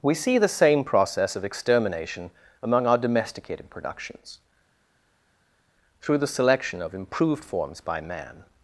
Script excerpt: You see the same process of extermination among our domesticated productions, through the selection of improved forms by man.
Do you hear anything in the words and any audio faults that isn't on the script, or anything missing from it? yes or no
yes